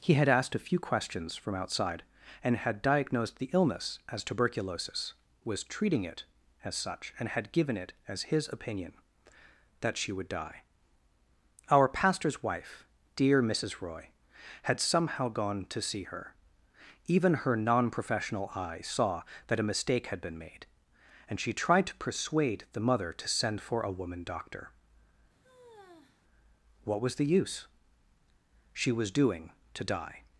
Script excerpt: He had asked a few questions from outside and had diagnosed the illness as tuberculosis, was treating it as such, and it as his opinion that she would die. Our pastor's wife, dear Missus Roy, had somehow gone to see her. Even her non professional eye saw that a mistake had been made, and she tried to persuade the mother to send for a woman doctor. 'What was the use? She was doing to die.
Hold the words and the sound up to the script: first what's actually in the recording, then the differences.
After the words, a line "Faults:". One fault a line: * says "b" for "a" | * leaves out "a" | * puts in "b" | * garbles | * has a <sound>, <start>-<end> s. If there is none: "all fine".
He had asked a few questions from outside and had diagnosed the illness as tuberculosis, was treating it as such, and had given it as his opinion that she would die. Our pastor's wife, dear Missus Roy, had somehow gone to see her. Even her non professional eye saw that a mistake had been made, and she tried to persuade the mother to send for a woman doctor. 'What was the use? She was doing to die.
Faults:
* puts in "had given"
* has a sigh, 25.4-26.2 s